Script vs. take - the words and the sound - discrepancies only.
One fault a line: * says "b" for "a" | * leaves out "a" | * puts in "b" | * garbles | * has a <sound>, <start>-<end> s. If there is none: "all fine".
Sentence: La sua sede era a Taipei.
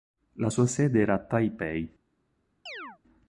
* has a chirp, 2.7-3.0 s